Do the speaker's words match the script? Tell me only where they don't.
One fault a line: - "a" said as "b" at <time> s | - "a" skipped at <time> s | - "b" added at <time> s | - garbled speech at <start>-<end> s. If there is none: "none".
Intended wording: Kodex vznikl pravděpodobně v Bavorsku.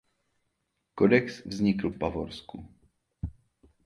- "pravděpodobně" skipped at 1.9 s